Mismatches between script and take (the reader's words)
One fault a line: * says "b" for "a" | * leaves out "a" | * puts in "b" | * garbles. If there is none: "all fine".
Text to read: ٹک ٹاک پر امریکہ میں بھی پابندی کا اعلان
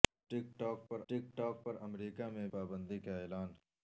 * puts in "ٹک ٹاک پر"
* leaves out "بھی"